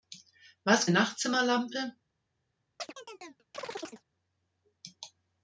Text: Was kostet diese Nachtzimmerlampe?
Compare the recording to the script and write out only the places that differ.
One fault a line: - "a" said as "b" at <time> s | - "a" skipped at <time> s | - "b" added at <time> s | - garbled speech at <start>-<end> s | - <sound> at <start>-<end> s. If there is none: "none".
- "kostet diese" skipped at 0.9 s
- chirp at 2.8-4.0 s